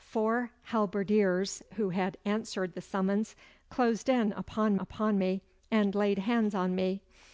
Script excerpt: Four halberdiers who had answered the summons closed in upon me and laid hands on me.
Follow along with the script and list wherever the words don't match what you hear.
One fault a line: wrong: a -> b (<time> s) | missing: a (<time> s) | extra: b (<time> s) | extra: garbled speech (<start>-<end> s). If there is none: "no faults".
extra: upon (4.8 s)